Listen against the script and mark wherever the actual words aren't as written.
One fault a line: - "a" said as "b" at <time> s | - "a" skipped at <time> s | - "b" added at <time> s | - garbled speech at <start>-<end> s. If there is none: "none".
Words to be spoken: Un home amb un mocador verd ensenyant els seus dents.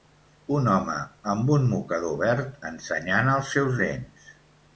none